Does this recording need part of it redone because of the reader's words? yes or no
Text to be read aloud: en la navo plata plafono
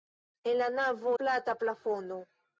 no